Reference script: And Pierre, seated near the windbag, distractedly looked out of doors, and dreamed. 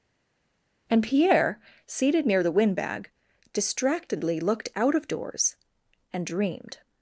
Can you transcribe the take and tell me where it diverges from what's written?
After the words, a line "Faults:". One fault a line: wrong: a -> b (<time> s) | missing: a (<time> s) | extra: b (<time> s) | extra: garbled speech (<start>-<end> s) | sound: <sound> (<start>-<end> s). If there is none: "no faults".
And Pierre, seated near the windbag, distractedly looked out of doors, and dreamed.
Faults:
no faults